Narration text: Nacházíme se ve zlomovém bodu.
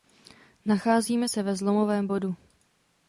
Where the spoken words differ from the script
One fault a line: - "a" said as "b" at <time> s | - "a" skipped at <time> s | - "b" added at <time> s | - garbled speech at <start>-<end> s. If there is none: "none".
none